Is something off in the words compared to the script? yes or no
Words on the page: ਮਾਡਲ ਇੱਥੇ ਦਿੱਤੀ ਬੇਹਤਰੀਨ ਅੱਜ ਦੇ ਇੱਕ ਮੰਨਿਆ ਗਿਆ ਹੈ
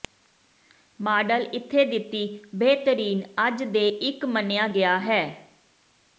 no